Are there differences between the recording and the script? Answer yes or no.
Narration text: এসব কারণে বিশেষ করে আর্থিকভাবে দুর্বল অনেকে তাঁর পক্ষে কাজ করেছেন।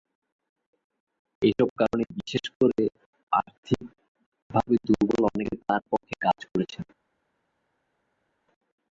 no